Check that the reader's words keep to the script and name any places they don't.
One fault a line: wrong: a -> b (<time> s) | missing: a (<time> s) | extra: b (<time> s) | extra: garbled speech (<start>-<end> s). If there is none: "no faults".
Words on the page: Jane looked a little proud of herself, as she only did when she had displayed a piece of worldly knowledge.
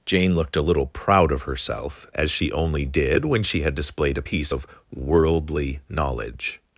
no faults